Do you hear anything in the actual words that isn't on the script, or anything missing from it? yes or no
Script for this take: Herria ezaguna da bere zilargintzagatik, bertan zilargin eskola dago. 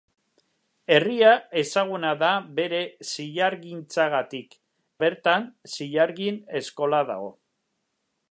no